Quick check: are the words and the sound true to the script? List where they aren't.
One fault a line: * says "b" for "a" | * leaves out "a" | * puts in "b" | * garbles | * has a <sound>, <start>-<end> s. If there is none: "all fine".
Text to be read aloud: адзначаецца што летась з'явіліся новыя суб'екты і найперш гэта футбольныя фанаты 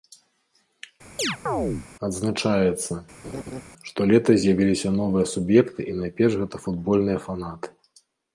* has a chirp, 1.2-1.9 s
* has a laugh, 3.2-3.6 s